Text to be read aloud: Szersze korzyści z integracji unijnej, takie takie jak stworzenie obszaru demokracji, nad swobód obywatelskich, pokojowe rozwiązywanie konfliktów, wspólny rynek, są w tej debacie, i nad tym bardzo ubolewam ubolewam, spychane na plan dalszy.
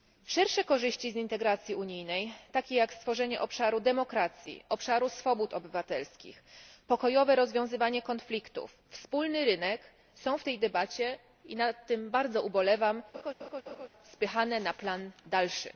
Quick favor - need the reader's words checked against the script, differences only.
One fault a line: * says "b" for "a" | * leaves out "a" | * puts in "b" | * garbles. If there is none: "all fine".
* leaves out "takie"
* says "obszaru" for "nad"
* leaves out "ubolewam"